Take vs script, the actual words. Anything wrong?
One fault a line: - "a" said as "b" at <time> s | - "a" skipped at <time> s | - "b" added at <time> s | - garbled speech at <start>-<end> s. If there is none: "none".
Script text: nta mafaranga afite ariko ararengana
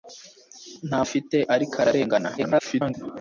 - "mafaranga" skipped at 1.0 s
- garbled speech at 2.4-2.9 s